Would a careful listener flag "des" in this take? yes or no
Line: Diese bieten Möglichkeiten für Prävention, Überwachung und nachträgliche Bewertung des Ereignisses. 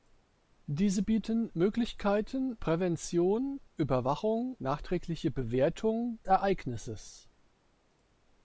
yes